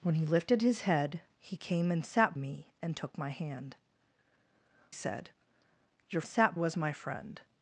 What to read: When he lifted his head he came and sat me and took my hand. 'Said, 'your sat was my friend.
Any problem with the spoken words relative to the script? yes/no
no